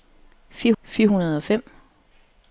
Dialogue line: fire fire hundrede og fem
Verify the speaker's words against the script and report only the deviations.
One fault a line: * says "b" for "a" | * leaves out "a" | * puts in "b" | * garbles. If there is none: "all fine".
all fine